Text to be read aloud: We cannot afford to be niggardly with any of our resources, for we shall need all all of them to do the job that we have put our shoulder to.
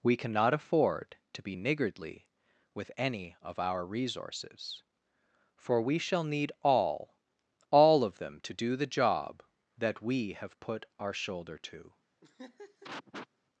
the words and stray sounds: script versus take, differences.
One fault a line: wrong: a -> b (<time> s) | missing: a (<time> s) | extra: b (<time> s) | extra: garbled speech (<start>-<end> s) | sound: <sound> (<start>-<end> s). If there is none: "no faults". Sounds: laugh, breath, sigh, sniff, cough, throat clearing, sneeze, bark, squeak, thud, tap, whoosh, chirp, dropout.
sound: laugh (12.2-13.3 s)